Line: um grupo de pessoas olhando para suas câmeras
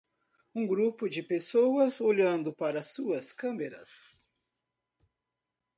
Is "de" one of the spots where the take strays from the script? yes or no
no